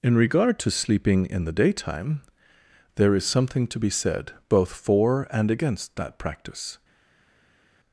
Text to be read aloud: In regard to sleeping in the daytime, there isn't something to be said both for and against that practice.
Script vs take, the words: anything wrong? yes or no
yes